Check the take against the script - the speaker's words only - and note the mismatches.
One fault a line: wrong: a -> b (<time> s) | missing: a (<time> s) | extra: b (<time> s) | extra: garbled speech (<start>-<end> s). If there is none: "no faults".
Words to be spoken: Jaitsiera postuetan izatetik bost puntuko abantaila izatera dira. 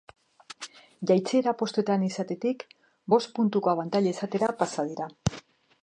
extra: pasa (4.6 s)